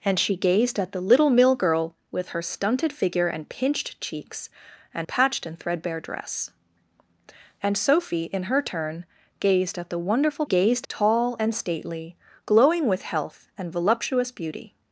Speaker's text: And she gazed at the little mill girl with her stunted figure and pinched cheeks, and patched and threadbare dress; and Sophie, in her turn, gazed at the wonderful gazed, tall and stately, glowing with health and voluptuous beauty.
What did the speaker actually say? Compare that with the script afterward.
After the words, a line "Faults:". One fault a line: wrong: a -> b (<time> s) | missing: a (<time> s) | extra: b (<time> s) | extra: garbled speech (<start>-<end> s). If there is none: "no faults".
And she gazed at the little mill girl with her stunted figure and pinched cheeks, and patched and threadbare dress; and Sophie, in her turn, gazed at the wonderful gazed, tall and stately, glowing with health and voluptuous beauty.
Faults:
no faults